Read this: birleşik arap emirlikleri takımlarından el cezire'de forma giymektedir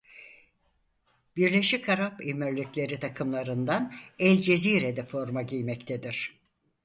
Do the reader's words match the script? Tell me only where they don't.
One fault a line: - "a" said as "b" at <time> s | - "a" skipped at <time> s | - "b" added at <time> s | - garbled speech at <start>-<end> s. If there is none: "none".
none